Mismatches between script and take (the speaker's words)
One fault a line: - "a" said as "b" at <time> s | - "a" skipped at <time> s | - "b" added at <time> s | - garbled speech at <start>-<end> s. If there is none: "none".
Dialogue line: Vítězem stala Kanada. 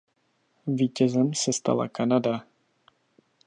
- "se" added at 1.3 s